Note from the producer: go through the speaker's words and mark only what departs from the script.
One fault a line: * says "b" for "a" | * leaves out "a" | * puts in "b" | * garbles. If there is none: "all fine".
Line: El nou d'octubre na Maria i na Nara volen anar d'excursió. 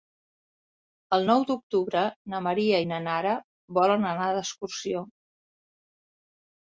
all fine